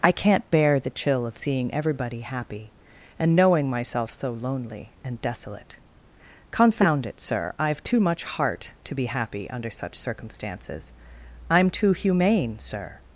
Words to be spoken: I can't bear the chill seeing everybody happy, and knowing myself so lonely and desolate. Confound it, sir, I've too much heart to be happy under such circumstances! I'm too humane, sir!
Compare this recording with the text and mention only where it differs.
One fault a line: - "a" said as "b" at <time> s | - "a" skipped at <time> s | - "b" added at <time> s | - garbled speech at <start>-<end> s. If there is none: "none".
- "of" added at 1.3 s